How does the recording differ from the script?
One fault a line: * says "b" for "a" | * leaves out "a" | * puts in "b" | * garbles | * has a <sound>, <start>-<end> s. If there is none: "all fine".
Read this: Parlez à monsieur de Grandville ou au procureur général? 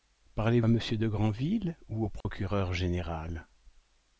* has a dropout, 2.2-2.3 s